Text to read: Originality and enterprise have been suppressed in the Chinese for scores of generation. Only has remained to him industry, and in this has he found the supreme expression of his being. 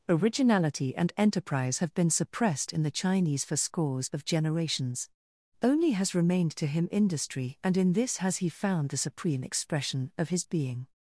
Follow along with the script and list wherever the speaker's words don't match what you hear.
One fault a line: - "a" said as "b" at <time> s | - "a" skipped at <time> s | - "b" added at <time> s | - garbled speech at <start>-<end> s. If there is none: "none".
- "generation" said as "generations" at 4.2 s